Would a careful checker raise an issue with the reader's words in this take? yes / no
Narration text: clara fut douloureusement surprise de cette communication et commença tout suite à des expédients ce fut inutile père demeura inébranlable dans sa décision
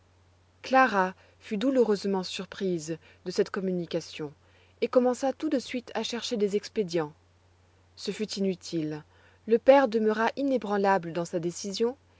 yes